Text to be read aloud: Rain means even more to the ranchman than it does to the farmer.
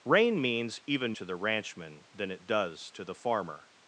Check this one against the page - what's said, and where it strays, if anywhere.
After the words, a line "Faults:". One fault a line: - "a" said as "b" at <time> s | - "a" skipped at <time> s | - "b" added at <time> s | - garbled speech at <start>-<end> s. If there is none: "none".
Rain means even to the ranchman than it does to the farmer.
Faults:
- "more" skipped at 1.1 s